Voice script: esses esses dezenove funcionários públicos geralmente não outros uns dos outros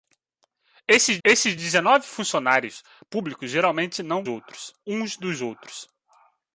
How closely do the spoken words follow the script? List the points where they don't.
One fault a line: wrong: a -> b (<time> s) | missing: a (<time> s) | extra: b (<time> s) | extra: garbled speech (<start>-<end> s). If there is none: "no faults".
no faults